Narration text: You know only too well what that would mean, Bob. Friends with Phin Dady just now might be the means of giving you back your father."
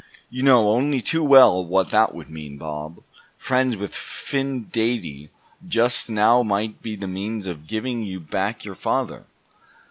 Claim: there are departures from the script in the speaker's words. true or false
false